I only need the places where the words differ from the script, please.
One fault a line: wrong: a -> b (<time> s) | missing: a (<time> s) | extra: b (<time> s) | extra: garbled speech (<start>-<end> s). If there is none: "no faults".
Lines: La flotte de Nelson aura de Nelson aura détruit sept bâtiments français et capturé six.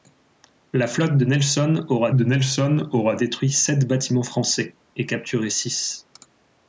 no faults